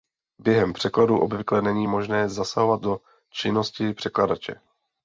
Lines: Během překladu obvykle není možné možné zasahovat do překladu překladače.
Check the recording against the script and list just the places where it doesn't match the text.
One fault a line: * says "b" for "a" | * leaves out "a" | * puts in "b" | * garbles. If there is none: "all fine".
* leaves out "možné"
* says "činnosti" for "překladu"